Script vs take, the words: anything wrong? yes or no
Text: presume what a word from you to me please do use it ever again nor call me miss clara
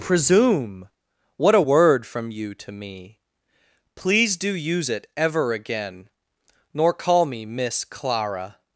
no